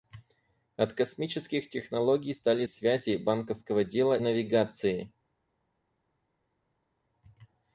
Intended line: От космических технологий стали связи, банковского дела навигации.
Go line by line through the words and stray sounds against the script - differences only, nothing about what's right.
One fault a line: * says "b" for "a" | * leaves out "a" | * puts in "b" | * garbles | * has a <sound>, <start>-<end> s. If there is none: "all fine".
all fine